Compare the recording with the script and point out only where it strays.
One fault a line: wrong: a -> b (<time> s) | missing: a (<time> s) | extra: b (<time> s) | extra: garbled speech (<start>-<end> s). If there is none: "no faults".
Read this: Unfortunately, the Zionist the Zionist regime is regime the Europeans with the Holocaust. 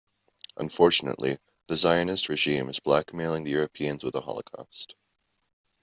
missing: the Zionist (2.3 s)
wrong: regime -> blackmailing (2.8 s)